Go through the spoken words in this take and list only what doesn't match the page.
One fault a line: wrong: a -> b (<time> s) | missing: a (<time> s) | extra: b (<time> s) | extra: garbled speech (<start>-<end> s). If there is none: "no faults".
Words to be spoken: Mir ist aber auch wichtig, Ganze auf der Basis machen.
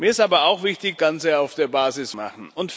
no faults